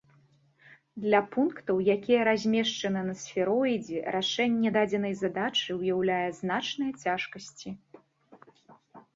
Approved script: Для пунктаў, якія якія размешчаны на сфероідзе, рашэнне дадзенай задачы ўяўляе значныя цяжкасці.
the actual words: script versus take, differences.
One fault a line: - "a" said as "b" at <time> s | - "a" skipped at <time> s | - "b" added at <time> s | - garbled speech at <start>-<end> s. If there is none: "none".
- "якія" skipped at 2.2 s